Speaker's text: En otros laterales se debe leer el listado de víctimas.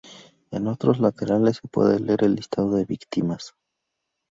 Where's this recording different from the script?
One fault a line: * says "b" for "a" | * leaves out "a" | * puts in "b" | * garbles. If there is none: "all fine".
* says "puede" for "debe"